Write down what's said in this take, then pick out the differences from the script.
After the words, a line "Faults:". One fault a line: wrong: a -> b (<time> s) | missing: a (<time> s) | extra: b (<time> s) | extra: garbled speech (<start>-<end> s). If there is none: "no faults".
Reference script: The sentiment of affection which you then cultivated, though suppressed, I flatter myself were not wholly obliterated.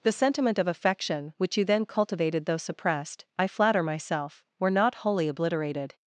The sentiment of affection which you then cultivated, though suppressed, I flatter myself were not wholly obliterated.
Faults:
no faults